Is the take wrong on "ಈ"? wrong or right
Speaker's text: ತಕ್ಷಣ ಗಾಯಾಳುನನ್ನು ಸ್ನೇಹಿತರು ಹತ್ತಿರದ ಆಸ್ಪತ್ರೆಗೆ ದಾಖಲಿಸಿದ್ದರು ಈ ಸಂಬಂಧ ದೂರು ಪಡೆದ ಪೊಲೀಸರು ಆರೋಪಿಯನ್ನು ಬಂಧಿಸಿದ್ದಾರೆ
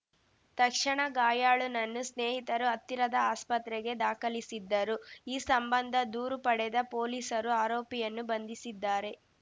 right